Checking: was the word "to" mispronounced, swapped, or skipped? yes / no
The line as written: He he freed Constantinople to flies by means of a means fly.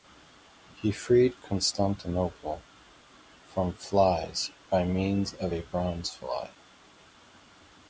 yes